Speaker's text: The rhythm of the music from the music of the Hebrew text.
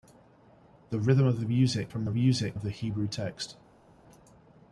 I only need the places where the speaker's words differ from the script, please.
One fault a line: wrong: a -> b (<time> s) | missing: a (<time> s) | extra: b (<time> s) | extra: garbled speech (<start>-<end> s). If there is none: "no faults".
no faults